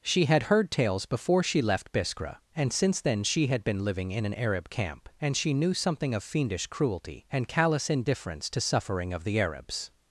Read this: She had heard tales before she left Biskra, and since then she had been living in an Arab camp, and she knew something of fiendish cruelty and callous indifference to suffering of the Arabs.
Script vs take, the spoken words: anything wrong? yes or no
no